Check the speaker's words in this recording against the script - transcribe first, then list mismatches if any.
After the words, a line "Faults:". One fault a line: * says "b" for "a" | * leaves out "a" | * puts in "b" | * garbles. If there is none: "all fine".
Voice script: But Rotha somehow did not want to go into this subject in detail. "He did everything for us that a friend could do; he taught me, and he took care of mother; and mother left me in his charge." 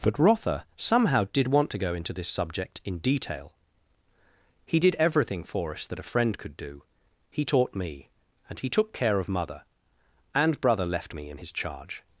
But Rotha somehow did want to go into this subject in detail. "He did everything for us that a friend could do; he taught me, and he took care of mother; and brother left me in his charge."
Faults:
* leaves out "not"
* says "brother" for "mother"